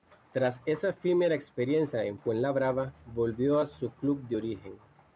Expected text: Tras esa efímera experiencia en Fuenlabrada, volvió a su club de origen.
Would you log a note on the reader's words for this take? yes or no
no